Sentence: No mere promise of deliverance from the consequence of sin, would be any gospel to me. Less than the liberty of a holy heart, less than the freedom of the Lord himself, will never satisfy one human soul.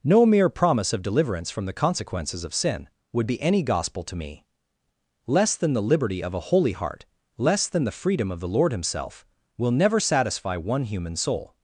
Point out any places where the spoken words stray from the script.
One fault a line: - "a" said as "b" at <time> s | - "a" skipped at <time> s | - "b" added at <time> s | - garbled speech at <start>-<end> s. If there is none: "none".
- "consequence" said as "consequences" at 1.8 s